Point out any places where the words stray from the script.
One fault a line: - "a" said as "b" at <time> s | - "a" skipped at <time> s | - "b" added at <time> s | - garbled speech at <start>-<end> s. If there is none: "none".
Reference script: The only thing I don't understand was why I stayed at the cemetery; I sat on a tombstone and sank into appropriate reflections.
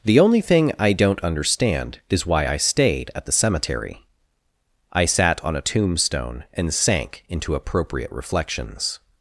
- "was" said as "is" at 2.1 s